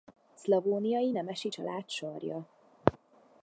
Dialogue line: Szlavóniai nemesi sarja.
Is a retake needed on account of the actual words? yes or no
yes